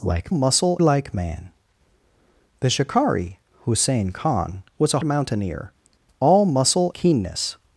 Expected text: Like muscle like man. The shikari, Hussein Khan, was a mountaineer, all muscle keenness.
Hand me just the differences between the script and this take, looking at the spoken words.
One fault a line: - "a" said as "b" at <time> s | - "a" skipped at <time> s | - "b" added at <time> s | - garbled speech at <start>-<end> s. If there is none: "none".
none